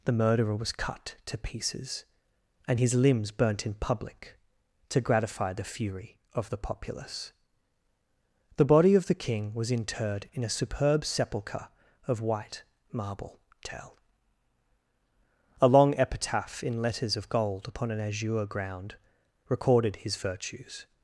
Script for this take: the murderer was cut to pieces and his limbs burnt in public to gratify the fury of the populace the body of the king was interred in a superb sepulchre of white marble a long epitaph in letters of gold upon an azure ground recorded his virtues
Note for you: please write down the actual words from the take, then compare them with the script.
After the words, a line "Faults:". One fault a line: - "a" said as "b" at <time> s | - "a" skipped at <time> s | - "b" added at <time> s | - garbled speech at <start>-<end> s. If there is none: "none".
the murderer was cut to pieces and his limbs burnt in public to gratify the fury of the populace the body of the king was interred in a superb sepulchre of white marble tell a long epitaph in letters of gold upon an azure ground recorded his virtues
Faults:
- "tell" added at 13.6 s